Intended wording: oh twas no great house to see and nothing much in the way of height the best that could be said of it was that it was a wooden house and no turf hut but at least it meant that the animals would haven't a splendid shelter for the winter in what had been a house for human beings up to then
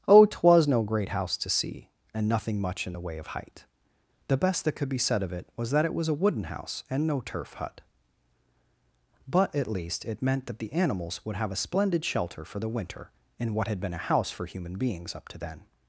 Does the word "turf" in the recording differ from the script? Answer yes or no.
no